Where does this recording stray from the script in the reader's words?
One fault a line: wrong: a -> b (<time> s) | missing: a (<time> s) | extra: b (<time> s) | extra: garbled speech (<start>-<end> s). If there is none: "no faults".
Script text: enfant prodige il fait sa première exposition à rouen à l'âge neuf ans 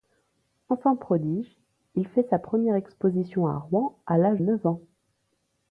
no faults